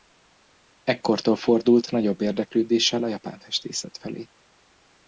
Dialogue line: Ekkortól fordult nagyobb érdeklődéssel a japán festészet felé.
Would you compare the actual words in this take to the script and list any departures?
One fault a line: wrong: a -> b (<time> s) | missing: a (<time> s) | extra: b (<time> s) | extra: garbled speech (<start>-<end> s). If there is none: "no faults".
no faults